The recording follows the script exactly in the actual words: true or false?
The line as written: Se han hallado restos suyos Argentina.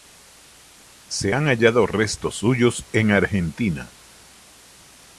false